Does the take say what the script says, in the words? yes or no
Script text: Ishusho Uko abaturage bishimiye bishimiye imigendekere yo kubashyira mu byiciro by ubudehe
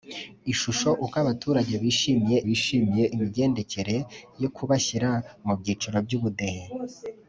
yes